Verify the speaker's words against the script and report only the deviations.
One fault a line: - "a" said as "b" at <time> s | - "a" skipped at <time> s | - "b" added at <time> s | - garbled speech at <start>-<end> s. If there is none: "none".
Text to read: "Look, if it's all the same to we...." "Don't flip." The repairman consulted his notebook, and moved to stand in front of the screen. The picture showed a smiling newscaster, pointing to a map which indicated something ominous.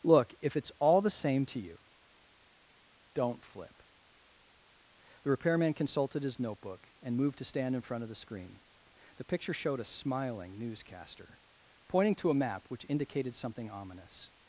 - "we" said as "you" at 1.6 s